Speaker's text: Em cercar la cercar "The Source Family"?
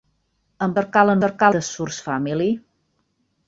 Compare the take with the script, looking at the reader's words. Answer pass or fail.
pass